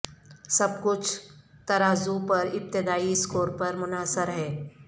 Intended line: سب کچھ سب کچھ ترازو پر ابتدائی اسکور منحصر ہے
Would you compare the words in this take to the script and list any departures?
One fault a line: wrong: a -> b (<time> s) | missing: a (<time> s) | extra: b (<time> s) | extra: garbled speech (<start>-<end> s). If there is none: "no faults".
missing: سب کچھ (1.1 s)
extra: پر (3.6 s)